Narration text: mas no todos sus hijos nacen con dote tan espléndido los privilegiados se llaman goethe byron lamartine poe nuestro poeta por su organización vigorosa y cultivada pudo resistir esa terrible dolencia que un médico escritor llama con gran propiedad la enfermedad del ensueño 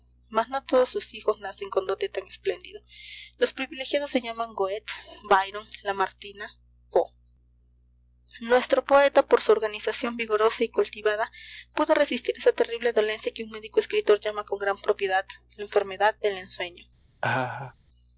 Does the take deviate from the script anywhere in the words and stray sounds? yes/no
yes